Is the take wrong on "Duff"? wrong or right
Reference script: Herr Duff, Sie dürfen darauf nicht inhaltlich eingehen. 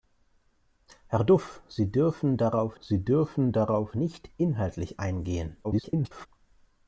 right